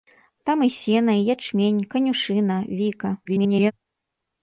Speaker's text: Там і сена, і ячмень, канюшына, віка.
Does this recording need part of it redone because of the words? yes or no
yes